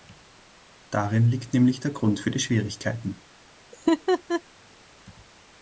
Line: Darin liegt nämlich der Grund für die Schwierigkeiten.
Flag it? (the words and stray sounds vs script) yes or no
yes